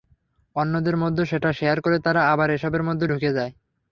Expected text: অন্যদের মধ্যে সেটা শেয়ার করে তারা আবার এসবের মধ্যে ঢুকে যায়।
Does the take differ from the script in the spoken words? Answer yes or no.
no